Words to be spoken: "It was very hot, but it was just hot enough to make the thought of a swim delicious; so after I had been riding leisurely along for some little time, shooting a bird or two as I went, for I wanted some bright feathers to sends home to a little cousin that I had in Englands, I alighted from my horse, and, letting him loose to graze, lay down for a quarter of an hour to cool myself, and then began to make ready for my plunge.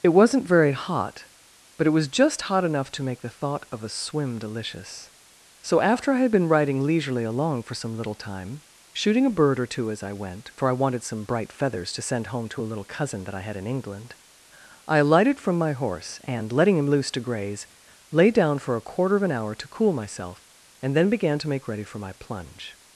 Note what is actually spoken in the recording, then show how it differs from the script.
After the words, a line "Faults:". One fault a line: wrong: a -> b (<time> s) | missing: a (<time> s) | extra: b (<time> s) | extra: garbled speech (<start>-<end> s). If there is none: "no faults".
"It wasn't very hot, but it was just hot enough to make the thought of a swim delicious; so after I had been riding leisurely along for some little time, shooting a bird or two as I went, for I wanted some bright feathers to send home to a little cousin that I had in England, I alighted from my horse, and, letting him loose to graze, lay down for a quarter of an hour to cool myself, and then began to make ready for my plunge.
Faults:
wrong: was -> wasn't (0.1 s)
wrong: sends -> send (12.0 s)
wrong: Englands -> England (13.7 s)